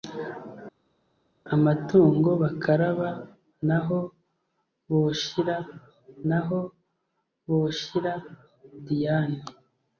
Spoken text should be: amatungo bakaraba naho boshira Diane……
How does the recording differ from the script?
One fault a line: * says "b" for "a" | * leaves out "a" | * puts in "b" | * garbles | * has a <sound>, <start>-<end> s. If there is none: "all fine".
* puts in "naho boshira"